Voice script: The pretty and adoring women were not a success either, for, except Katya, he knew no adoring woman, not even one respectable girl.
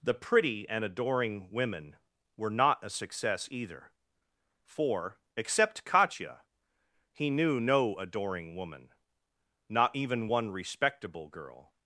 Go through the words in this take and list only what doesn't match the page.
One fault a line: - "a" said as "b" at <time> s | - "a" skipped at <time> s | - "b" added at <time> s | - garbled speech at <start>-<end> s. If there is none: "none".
none